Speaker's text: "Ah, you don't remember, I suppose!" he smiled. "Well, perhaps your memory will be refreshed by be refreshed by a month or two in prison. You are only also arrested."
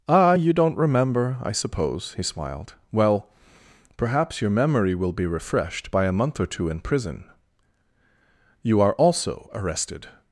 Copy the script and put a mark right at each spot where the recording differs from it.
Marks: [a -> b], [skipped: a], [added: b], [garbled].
"Ah, you don't remember, I suppose!" he smiled. "Well, perhaps your memory will be refreshed by [skipped: be refreshed by] a month or two in prison. You are [skipped: only] also arrested."